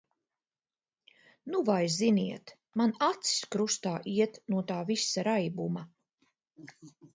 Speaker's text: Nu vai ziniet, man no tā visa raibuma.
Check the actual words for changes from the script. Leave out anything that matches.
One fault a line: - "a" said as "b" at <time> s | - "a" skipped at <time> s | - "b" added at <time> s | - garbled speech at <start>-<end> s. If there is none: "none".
- "acis krustā iet" added at 3.1 s